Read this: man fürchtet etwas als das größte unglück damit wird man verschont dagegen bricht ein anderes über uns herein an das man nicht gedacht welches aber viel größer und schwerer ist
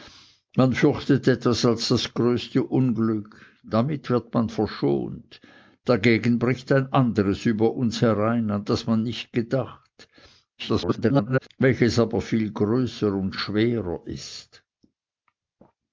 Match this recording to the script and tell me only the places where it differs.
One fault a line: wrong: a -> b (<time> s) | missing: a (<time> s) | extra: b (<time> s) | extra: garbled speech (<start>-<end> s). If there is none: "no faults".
extra: garbled speech (10.6-11.5 s)